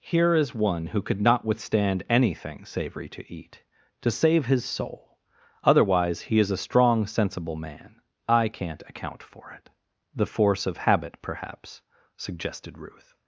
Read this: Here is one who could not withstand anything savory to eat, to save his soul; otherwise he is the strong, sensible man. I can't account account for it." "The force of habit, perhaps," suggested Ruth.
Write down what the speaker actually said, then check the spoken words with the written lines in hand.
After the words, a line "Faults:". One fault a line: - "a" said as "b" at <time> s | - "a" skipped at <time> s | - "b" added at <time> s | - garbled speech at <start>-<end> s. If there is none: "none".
Here is one who could not withstand anything savory to eat, to save his soul; otherwise he is a strong, sensible man. I can't account for it." "The force of habit, perhaps," suggested Ruth.
Faults:
- "the" said as "a" at 6.5 s
- "account" skipped at 9.2 s